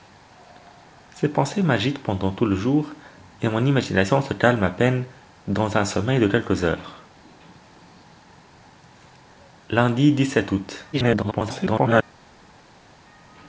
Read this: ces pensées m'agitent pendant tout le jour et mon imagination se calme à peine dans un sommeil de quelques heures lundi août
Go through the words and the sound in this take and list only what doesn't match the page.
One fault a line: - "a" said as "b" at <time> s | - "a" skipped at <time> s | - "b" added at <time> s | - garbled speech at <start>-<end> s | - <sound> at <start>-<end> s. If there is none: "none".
- garbled speech at 10.9-12.0 s